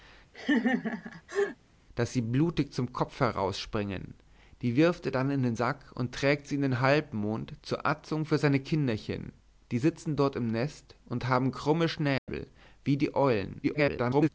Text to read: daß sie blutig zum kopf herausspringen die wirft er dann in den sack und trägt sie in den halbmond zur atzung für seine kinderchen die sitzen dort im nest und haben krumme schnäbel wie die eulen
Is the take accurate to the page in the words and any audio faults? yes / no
no